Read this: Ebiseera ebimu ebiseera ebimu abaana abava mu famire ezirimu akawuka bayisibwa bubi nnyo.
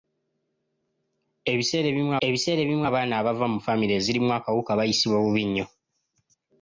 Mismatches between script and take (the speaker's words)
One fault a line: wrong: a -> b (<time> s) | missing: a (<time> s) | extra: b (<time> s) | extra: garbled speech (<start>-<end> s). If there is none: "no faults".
no faults